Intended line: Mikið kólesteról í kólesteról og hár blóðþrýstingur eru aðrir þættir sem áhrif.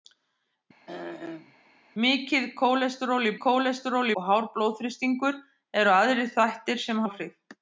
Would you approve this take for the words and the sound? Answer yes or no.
no